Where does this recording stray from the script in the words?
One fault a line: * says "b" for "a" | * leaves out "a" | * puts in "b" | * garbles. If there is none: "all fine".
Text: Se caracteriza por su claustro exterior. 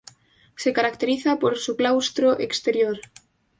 all fine